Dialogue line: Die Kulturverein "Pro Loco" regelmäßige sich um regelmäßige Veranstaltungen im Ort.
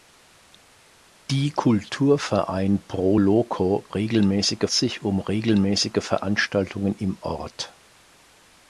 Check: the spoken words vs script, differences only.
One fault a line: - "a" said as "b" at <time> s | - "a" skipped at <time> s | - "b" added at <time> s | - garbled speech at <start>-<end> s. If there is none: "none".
none